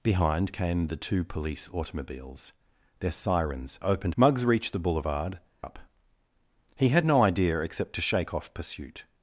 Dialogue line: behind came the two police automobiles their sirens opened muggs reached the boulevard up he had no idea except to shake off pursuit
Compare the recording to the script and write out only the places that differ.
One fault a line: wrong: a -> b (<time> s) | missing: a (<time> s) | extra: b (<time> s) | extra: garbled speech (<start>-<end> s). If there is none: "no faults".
no faults